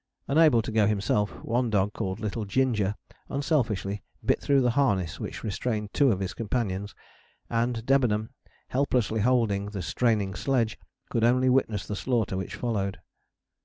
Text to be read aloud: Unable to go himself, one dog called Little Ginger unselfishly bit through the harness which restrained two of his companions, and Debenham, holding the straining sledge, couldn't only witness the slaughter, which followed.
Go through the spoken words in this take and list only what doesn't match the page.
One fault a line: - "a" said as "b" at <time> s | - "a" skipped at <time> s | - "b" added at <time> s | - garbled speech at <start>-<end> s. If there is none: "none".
- "helplessly" added at 8.7 s
- "couldn't" said as "could" at 11.1 s